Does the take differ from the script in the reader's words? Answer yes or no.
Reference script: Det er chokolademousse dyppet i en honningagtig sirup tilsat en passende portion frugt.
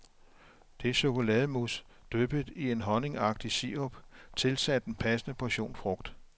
no